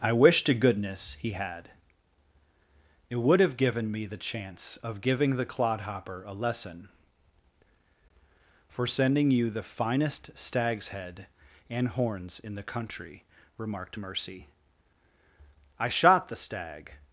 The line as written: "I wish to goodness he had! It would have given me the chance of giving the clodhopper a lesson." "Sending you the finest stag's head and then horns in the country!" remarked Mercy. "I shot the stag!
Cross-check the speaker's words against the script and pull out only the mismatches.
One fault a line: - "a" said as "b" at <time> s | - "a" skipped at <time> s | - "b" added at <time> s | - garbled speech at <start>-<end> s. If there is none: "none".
- "For" added at 8.7 s
- "then" skipped at 11.9 s